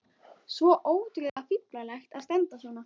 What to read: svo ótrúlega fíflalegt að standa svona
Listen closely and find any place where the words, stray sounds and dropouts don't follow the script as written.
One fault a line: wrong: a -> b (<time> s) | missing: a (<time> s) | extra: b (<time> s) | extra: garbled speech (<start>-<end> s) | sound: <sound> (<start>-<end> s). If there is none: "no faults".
sound: dropout (1.3-1.4 s)